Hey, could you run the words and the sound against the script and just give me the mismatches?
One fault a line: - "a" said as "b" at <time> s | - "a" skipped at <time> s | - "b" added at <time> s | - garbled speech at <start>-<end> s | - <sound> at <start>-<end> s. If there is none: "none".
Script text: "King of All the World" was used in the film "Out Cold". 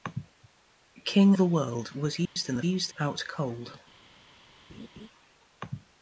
- "of All" skipped at 1.4 s
- dropout at 2.3-2.4 s
- "film" said as "used" at 2.6 s
- laugh at 4.7-5.1 s